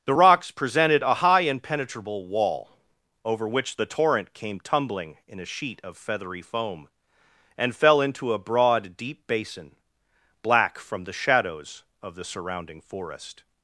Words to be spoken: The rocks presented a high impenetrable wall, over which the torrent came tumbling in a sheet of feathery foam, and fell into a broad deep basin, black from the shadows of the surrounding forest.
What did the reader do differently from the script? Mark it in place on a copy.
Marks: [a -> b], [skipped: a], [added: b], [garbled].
The rocks presented a high impenetrable wall, over which the torrent came tumbling in a sheet of feathery foam, and fell into a broad deep basin, black from the shadows of the surrounding forest.